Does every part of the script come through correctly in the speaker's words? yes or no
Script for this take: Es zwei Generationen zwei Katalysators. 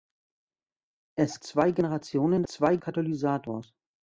yes